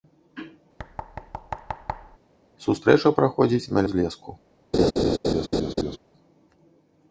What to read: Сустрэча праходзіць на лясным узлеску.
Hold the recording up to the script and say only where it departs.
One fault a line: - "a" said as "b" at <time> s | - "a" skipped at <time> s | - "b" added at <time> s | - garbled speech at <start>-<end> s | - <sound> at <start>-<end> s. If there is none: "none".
- thud at 0.8-2.2 s
- "лясным" skipped at 3.8 s
- laugh at 4.7-6.0 s